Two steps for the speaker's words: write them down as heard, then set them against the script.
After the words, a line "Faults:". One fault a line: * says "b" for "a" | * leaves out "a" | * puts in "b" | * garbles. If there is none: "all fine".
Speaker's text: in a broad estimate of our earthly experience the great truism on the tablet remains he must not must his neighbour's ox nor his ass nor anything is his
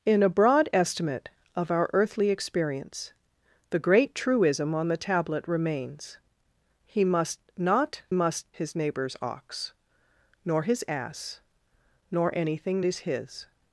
in a broad estimate of our earthly experience the great truism on the tablet remains he must not must his neighbour's ox nor his ass nor anything is his
Faults:
all fine